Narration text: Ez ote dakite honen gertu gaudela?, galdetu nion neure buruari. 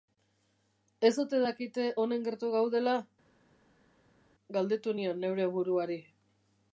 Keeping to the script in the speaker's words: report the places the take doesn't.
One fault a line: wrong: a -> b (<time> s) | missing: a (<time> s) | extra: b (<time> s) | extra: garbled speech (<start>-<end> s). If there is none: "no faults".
no faults